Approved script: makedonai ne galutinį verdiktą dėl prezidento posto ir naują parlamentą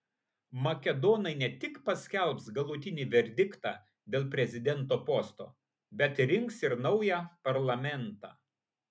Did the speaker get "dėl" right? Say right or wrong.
right